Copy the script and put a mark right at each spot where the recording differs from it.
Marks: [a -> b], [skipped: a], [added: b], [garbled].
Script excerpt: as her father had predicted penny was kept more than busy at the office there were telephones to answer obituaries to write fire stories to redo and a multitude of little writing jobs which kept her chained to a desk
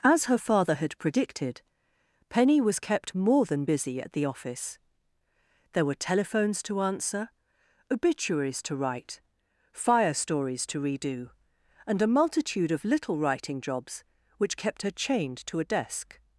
as her father had predicted penny was kept more than busy at the office there were telephones to answer obituaries to write fire stories to redo and a multitude of little writing jobs which kept her chained to a desk